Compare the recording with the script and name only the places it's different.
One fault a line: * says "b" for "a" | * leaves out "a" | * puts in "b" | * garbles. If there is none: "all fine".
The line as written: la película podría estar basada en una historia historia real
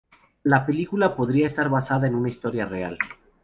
* leaves out "historia"